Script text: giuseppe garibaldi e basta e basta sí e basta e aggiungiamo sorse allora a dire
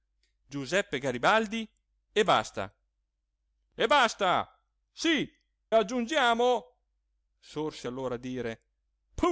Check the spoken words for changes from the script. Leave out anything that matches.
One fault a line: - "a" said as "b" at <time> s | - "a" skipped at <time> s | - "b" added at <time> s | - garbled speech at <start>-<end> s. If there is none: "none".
- "e basta e" skipped at 5.3 s